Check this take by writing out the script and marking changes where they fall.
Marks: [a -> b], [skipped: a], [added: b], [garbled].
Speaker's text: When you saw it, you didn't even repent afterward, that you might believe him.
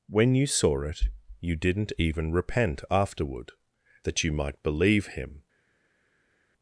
When you saw it, you didn't even repent afterward, that you might believe him.